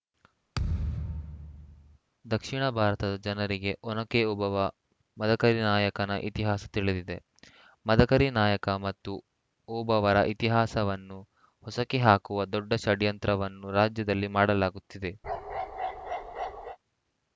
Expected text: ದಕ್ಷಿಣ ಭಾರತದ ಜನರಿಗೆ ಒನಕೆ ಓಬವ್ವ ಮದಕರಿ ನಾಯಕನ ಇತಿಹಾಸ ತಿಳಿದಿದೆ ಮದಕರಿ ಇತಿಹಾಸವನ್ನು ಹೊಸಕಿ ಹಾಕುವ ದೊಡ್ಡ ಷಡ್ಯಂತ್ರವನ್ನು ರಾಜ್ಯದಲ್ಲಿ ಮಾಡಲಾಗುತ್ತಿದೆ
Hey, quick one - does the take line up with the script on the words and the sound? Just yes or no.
no